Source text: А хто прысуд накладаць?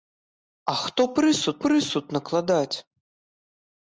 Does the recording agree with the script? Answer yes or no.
no